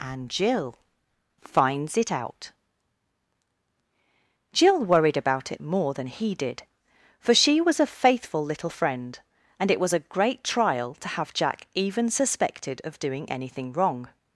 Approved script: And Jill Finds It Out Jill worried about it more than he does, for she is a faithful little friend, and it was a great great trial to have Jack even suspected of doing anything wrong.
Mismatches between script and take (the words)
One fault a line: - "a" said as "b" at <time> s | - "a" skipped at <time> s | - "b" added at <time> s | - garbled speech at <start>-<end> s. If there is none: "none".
- "does" said as "did" at 6.3 s
- "is" said as "was" at 7.6 s
- "great" skipped at 10.4 s